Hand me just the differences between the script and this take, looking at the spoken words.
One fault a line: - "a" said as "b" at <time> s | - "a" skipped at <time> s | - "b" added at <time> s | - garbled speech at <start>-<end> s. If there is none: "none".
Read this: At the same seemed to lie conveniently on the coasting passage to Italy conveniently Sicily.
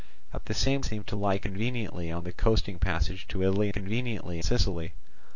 none